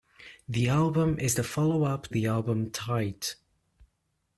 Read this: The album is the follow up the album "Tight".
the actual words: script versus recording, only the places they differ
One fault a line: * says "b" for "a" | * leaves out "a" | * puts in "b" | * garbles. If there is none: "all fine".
all fine